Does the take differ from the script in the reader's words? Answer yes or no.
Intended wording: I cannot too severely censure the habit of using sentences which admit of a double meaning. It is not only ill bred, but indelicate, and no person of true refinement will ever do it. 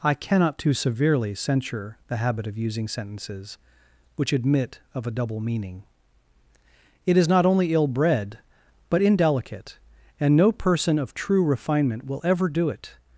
no